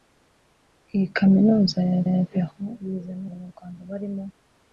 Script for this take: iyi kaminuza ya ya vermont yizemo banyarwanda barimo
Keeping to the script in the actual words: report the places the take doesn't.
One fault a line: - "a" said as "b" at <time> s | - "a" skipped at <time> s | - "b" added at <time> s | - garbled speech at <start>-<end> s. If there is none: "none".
none